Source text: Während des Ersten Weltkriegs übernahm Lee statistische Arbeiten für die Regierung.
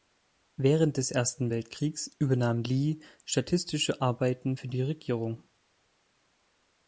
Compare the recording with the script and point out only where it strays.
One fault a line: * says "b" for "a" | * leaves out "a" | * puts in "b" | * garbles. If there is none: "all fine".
all fine